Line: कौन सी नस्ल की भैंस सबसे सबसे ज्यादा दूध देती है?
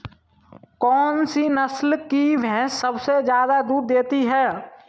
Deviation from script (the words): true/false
true